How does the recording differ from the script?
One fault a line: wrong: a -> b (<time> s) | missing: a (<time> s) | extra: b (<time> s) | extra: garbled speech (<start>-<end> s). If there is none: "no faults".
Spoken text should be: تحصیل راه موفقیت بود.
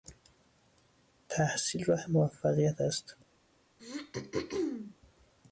wrong: بود -> است (2.8 s)